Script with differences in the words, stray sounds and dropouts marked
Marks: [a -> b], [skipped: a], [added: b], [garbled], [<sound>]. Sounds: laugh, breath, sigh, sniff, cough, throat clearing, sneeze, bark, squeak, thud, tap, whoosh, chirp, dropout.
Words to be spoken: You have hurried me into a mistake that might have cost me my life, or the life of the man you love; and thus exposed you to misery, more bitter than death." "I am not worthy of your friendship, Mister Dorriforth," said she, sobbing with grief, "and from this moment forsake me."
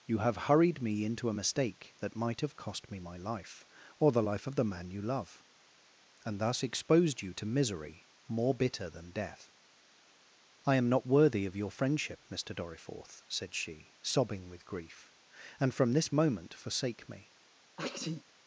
You have hurried me into a mistake that might have cost me my life, or the life of the man you love; and thus exposed you to misery, more bitter than death." "I am not worthy of your friendship, Mister Dorriforth," said she, sobbing with grief, "and from this moment forsake me." [sneeze]